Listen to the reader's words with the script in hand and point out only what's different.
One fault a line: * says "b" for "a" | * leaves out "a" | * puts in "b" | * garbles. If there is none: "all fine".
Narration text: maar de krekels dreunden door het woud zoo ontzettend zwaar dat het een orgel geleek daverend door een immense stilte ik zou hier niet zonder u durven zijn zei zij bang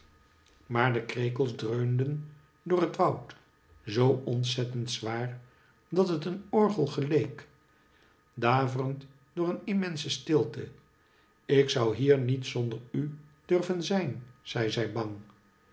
all fine